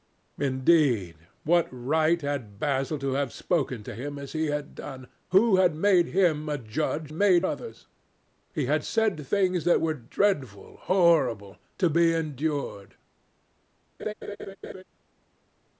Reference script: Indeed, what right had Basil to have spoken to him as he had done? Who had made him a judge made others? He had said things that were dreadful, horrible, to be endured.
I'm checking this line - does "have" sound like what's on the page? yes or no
yes